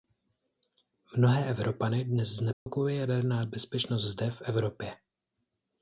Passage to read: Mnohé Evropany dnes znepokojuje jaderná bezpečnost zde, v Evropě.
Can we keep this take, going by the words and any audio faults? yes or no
no